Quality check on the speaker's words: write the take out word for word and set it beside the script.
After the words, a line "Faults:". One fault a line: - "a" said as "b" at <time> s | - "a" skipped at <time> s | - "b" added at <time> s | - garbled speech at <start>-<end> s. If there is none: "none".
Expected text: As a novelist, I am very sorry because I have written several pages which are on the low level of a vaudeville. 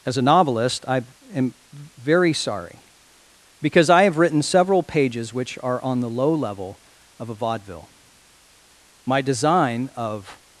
As a novelist, I am very sorry because I have written several pages which are on the low level of a vaudeville. My design of
Faults:
- "My design of" added at 9.1 s